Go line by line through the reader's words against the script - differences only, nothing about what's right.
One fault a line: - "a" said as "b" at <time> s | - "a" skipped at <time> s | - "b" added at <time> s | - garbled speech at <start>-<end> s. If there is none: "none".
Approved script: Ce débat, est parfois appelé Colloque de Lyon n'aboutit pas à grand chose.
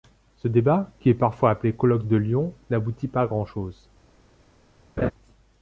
- "qui" added at 1.0 s